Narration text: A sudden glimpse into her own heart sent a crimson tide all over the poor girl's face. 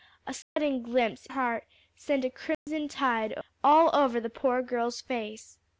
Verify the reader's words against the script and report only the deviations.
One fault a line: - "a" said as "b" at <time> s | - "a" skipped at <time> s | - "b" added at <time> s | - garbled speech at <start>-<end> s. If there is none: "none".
- "into her own" skipped at 1.3 s